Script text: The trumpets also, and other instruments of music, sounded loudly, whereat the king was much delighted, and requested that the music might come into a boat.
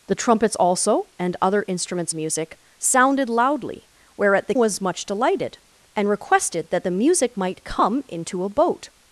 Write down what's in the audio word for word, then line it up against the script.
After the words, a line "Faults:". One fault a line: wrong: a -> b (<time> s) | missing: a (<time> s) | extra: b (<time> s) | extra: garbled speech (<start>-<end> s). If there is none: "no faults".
The trumpets also, and other instruments music, sounded loudly, whereat the was much delighted, and requested that the music might come into a boat.
Faults:
missing: of (2.1 s)
missing: king (4.5 s)